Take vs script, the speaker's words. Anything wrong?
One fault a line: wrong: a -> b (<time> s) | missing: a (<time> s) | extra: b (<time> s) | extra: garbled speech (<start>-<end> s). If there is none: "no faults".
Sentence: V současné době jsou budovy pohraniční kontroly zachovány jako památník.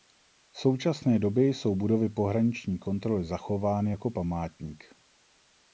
no faults